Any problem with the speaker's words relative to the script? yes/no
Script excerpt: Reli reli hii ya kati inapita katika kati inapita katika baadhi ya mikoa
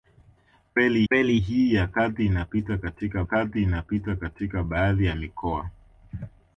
no